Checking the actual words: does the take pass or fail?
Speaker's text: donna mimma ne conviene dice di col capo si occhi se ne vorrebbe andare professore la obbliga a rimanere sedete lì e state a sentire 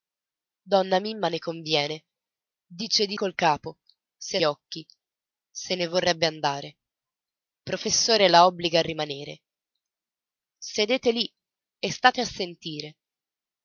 pass